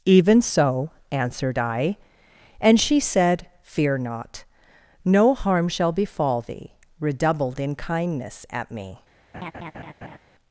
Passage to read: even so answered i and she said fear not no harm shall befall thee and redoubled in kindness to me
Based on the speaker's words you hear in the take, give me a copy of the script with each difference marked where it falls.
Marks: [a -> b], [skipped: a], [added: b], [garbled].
even so answered i and she said fear not no harm shall befall thee [skipped: and] redoubled in kindness [to -> at] me